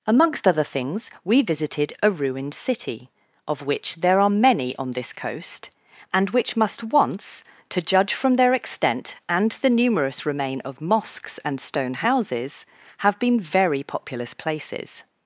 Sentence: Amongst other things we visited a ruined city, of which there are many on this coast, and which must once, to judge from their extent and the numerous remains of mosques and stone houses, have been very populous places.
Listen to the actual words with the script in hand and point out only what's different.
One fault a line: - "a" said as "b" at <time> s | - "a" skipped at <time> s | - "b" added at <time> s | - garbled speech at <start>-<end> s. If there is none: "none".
- "remains" said as "remain" at 10.2 s